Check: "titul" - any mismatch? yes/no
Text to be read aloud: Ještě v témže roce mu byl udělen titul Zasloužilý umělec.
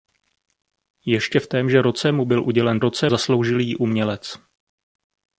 yes